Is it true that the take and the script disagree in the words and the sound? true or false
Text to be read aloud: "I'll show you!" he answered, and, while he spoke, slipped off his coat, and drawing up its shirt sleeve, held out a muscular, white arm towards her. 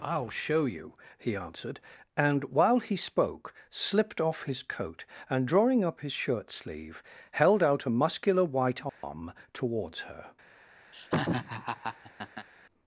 true